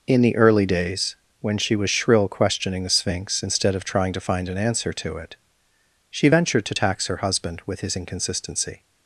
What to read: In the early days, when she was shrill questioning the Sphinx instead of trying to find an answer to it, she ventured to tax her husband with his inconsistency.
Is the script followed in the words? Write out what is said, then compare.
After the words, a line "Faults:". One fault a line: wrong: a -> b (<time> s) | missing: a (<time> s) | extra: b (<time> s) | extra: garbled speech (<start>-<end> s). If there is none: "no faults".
In the early days, when she was shrill questioning the Sphinx instead of trying to find an answer to it, she ventured to tax her husband with his inconsistency.
Faults:
no faults